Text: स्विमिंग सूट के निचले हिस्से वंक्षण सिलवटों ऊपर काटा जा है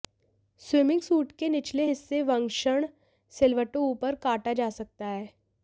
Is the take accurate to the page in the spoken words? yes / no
no